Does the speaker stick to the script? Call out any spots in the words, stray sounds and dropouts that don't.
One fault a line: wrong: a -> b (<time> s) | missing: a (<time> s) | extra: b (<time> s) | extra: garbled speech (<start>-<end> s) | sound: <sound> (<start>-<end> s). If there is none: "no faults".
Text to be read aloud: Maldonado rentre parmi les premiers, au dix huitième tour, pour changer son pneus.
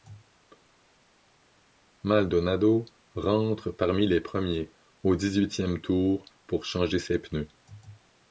wrong: son -> ses (7.0 s)